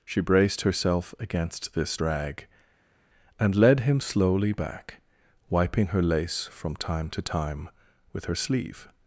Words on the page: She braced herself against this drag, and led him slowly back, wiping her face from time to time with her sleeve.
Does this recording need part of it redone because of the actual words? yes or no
yes